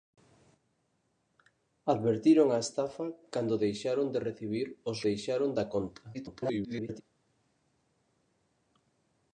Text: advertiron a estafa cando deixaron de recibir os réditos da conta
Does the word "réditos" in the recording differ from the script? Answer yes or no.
yes